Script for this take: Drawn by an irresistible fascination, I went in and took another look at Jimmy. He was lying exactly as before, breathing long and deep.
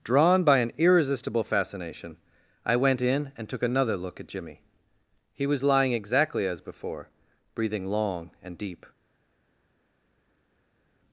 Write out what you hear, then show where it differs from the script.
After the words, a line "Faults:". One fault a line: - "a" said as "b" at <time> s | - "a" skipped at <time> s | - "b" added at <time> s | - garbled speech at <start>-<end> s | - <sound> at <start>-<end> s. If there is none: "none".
Drawn by an irresistible fascination, I went in and took another look at Jimmy. He was lying exactly as before, breathing long and deep.
Faults:
none